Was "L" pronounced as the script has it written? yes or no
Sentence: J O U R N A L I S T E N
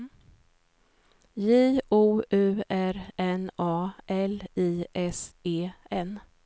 yes